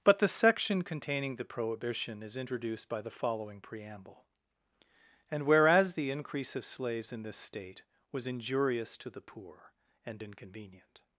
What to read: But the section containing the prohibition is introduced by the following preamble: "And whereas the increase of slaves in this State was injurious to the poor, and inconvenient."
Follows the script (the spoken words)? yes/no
yes